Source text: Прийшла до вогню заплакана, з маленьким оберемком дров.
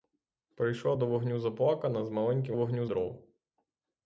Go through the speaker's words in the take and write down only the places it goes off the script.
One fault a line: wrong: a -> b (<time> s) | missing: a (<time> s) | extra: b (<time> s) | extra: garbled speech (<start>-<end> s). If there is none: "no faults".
wrong: оберемком -> вогню (2.5 s)